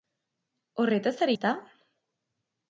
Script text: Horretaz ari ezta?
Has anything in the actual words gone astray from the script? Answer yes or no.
no